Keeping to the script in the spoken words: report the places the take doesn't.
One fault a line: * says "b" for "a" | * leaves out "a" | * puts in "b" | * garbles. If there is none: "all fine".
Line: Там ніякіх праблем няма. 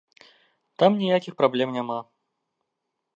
all fine